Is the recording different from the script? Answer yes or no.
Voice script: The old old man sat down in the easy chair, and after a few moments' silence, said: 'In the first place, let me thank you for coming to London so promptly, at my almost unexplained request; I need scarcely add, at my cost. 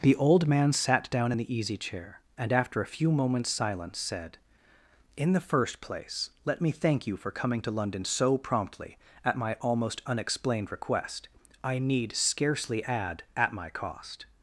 yes